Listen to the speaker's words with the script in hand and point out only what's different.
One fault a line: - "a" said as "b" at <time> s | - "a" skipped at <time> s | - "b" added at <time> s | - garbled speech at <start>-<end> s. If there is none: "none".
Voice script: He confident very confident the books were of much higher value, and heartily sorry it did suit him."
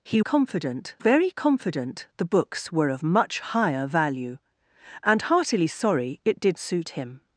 none